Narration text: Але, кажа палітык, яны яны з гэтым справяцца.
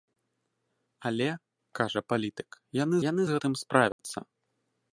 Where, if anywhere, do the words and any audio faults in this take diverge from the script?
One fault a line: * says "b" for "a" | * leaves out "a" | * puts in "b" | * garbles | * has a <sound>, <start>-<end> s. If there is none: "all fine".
* has a dropout, 3.9-4.0 s